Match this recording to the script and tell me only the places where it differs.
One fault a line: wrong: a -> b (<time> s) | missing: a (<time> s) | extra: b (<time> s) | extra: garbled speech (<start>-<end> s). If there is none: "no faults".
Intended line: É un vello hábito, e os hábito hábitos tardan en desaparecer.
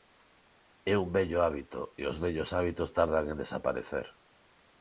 wrong: hábito -> vellos (2.2 s)